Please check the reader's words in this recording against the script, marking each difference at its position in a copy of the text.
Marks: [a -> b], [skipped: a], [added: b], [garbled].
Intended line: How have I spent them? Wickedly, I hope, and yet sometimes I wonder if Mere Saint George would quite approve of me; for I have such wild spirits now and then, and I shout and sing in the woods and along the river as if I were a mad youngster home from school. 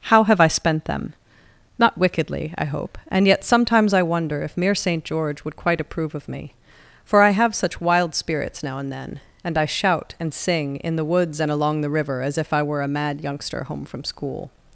How have I spent them? [added: Not] Wickedly, I hope, and yet sometimes I wonder if Mere Saint George would quite approve of me; for I have such wild spirits now and then, and I shout and sing in the woods and along the river as if I were a mad youngster home from school.